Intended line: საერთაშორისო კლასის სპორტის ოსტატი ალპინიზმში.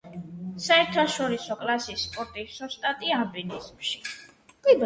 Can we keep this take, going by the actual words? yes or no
yes